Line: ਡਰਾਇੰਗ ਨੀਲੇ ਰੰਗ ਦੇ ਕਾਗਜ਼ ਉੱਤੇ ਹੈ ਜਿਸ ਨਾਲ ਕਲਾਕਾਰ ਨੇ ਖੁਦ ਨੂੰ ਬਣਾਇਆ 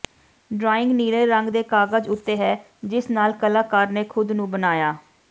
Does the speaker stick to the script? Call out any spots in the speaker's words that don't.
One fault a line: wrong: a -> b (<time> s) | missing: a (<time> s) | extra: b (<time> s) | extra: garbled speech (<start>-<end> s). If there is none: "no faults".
no faults